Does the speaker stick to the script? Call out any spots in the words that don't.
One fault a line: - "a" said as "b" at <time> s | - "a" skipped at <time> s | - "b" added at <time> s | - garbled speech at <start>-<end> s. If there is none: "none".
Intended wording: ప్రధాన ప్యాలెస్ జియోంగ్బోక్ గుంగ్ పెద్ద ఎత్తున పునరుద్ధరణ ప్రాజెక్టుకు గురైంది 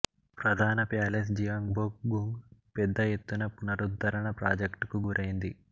none